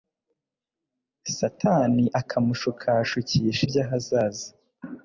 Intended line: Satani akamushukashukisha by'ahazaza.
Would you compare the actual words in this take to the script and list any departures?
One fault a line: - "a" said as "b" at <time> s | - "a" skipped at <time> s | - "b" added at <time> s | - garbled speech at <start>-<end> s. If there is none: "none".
none